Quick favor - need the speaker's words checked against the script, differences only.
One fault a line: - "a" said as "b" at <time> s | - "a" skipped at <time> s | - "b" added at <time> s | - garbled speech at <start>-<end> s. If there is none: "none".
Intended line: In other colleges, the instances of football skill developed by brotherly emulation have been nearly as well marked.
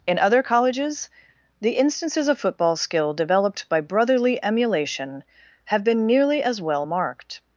none